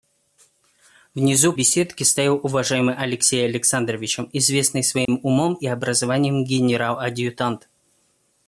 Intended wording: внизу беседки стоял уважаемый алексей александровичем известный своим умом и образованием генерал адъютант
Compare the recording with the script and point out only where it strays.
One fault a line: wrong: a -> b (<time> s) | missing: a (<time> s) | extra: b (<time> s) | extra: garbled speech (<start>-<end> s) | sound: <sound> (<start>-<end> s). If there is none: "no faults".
sound: dropout (5.0-5.1 s)